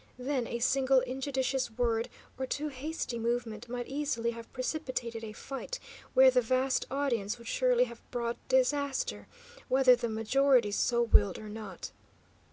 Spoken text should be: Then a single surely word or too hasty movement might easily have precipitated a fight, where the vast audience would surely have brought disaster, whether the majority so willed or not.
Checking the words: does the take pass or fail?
fail